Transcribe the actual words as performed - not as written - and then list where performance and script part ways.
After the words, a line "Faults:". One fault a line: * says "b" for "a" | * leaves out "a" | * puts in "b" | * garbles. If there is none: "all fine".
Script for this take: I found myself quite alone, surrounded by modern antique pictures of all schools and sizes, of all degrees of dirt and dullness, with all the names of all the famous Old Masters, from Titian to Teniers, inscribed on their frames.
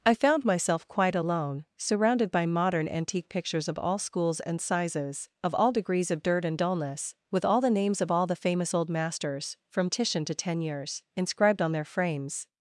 I found myself quite alone, surrounded by modern antique pictures of all schools and sizes, of all degrees of dirt and dullness, with all the names of all the famous Old Masters, from Titian to Teniers, inscribed on their frames.
Faults:
all fine